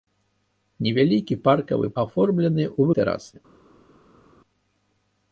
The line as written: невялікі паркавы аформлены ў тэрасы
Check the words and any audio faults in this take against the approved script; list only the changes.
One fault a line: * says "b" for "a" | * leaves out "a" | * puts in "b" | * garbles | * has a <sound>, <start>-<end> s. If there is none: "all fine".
all fine